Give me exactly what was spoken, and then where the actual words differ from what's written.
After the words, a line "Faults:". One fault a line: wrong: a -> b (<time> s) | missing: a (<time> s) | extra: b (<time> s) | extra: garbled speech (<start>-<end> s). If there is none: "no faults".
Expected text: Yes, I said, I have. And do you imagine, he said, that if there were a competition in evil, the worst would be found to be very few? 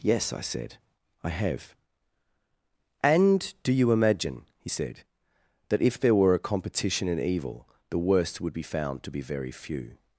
Yes, I said, I have. And do you imagine, he said, that if there were a competition in evil, the worst would be found to be very few?
Faults:
no faults